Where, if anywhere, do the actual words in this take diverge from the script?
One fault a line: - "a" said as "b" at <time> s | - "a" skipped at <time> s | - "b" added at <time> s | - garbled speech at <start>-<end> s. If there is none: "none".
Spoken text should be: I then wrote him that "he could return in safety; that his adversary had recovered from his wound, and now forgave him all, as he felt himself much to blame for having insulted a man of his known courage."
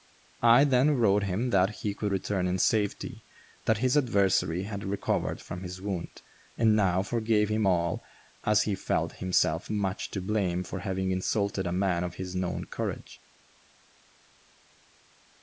none